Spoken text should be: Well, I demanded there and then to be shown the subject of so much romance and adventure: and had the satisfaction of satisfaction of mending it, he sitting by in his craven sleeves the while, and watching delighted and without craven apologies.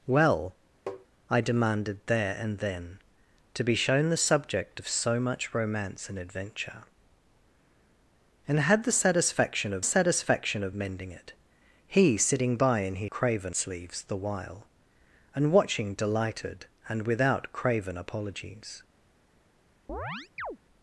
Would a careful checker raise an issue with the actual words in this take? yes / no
no